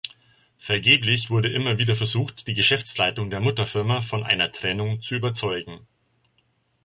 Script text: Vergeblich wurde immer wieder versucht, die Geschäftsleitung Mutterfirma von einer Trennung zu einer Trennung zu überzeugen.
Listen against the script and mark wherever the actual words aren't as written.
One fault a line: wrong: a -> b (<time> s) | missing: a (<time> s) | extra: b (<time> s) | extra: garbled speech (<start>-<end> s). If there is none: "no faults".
extra: der (3.3 s)
missing: einer Trennung zu (5.2 s)